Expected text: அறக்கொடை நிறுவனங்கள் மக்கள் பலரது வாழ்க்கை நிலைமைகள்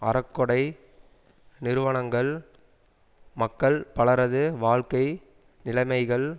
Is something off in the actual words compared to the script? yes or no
no